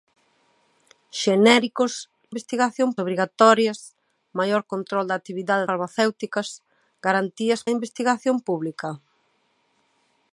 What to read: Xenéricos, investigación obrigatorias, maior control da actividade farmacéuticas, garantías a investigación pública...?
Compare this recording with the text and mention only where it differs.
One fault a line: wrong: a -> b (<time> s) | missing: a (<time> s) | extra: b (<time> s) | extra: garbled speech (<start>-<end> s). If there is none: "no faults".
no faults